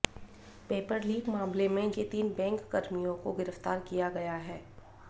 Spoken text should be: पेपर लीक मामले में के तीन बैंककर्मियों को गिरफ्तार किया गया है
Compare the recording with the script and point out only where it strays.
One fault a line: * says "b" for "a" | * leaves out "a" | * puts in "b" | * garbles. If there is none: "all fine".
all fine